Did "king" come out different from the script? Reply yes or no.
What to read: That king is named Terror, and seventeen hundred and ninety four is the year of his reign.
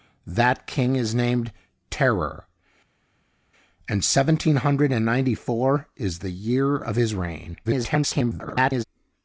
no